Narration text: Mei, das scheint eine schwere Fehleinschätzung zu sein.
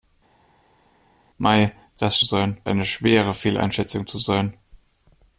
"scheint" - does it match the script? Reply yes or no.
no